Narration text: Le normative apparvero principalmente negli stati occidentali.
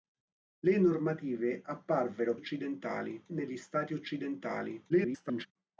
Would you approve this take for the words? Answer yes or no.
no